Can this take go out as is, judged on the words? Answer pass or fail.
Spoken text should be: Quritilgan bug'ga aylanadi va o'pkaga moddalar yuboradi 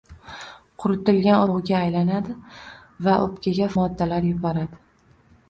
pass